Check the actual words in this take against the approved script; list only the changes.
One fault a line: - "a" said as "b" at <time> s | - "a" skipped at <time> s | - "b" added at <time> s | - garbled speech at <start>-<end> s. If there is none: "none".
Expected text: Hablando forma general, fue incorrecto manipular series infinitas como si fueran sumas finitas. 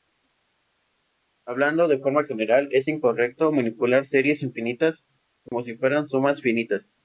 - "de" added at 1.9 s
- "fue" said as "es" at 2.7 s